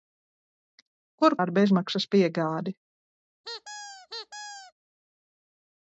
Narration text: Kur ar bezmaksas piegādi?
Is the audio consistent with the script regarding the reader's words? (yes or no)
yes